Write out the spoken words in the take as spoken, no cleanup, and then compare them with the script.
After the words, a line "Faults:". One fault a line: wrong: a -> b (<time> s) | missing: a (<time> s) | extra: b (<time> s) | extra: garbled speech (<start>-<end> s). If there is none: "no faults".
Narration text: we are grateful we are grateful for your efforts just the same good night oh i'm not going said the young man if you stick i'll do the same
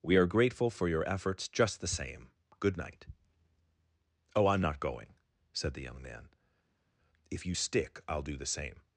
we are grateful for your efforts just the same good night oh i'm not going said the young man if you stick i'll do the same
Faults:
missing: we are grateful (0.7 s)